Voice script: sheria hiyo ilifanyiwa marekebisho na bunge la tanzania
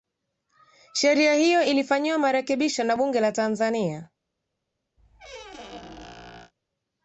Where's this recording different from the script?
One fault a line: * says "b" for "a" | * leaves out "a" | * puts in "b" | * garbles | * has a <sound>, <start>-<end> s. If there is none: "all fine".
* has a squeak, 5.0-6.5 s